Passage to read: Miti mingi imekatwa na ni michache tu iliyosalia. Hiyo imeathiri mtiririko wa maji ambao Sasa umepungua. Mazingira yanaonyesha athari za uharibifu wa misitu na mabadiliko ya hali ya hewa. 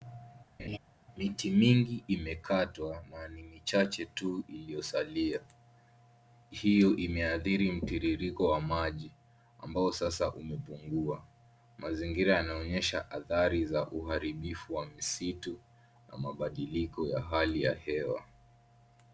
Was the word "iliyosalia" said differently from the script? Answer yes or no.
no